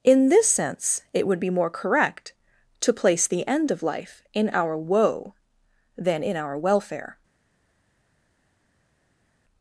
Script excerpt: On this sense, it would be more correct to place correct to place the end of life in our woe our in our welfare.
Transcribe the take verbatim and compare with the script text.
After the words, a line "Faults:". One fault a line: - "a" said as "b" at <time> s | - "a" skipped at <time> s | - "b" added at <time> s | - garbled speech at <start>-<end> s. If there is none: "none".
In this sense, it would be more correct to place the end of life in our woe than in our welfare.
Faults:
- "On" said as "In" at 0.0 s
- "correct to place" skipped at 3.3 s
- "our" said as "than" at 6.0 s